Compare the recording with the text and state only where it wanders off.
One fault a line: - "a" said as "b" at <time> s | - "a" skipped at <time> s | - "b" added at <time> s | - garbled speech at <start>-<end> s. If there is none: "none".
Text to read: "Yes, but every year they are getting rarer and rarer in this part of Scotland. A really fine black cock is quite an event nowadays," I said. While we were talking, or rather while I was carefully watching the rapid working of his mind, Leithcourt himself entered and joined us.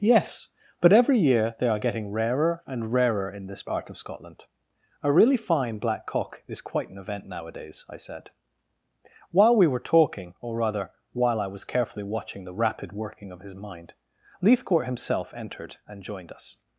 none